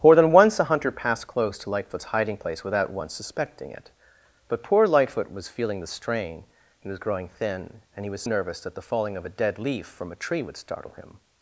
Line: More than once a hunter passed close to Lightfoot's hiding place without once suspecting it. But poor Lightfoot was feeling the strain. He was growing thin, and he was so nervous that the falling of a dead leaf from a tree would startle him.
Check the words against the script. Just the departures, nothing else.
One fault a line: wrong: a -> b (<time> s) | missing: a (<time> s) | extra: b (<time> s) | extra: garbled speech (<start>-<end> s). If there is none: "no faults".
missing: so (8.2 s)